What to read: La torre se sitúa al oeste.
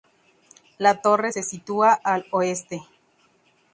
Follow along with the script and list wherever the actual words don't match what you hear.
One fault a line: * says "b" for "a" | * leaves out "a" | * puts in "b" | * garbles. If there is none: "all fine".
all fine